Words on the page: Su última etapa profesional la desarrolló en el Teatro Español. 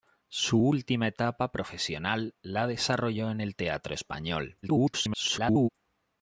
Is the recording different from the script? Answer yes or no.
yes